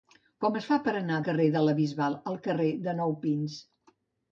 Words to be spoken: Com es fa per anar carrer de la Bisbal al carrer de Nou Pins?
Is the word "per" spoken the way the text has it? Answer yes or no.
yes